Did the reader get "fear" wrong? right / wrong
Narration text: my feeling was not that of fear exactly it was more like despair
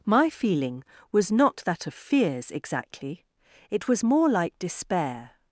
wrong